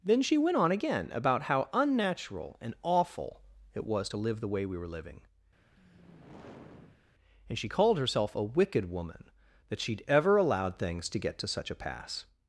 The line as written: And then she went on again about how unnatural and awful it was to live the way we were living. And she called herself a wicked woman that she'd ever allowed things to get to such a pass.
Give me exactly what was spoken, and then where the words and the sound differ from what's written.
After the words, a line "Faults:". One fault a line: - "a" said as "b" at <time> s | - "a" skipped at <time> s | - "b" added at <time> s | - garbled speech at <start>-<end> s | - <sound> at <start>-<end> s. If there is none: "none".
then she went on again about how unnatural and awful it was to live the way we were living. And she called herself a wicked woman that she'd ever allowed things to get to such a pass.
Faults:
- "And" skipped at 0.0 s
- sigh at 5.6-7.0 s